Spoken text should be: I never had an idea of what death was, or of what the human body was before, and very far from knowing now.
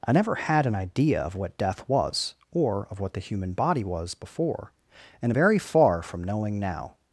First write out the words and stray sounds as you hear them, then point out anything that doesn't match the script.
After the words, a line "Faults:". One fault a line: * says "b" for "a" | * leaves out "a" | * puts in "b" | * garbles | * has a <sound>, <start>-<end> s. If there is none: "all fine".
I never had an idea of what death was, or of what the human body was before, and very far from knowing now.
Faults:
all fine